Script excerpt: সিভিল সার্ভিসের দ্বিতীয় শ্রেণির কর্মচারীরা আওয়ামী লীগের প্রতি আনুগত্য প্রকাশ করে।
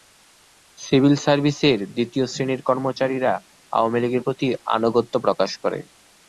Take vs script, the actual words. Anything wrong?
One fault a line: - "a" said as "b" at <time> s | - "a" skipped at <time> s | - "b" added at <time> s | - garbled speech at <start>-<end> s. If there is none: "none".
none